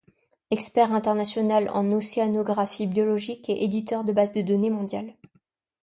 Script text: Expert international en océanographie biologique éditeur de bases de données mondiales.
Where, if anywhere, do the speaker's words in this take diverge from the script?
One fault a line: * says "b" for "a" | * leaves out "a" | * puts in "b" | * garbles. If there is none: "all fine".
* puts in "et"